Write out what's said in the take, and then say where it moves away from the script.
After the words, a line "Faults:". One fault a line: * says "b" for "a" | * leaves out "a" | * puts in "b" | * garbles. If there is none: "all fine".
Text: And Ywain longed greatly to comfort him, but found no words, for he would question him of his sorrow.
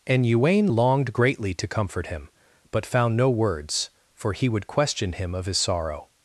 And Ywain longed greatly to comfort him, but found no words, for he would question him of his sorrow.
Faults:
all fine